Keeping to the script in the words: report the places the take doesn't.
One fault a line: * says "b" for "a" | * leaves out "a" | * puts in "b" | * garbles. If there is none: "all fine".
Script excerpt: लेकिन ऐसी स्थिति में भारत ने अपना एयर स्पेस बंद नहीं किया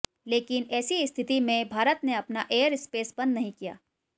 all fine